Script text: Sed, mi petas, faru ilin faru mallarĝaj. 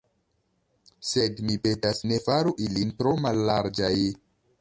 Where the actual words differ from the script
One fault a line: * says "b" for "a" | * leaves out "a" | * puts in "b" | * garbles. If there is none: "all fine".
* puts in "ne"
* says "tro" for "faru"